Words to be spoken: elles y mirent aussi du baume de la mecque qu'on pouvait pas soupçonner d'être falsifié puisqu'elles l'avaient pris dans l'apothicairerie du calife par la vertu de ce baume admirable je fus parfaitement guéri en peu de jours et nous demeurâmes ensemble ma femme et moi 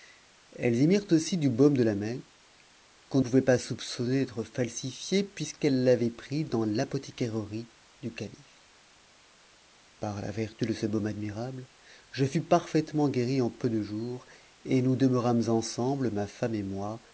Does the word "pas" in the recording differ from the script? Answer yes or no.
no